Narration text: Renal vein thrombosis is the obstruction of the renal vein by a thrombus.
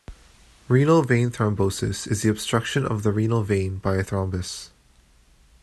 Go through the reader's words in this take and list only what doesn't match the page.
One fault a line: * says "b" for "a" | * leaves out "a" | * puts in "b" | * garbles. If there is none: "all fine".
all fine